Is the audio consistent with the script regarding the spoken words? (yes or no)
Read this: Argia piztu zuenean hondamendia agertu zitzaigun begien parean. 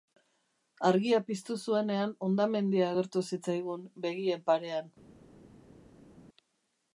yes